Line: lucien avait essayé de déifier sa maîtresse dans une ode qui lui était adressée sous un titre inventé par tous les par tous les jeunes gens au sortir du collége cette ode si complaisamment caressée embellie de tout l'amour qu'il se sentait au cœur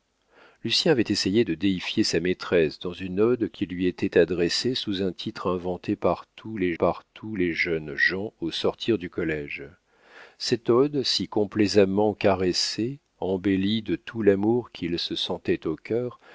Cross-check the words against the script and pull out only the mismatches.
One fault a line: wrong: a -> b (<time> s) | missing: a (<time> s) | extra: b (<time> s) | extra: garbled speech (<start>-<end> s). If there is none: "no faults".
no faults